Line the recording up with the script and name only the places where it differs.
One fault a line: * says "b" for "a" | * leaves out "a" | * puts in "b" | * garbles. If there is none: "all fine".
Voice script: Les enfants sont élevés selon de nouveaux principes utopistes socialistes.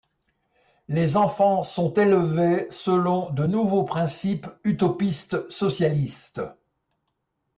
all fine